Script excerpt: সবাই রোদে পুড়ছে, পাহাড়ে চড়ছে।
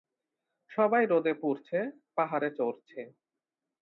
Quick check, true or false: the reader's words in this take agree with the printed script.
true